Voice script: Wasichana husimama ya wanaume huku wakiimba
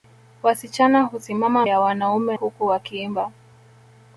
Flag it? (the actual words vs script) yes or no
no